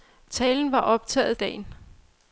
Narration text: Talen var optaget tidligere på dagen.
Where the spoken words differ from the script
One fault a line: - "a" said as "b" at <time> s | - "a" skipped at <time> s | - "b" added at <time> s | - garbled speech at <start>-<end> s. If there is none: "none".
- "tidligere på" skipped at 1.4 s